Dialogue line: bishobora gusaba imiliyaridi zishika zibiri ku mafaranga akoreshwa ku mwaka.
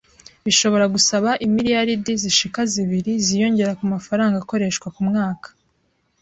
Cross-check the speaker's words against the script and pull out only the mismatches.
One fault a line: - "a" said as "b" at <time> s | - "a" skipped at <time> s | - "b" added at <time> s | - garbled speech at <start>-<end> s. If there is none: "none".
- "ziyongera" added at 3.2 s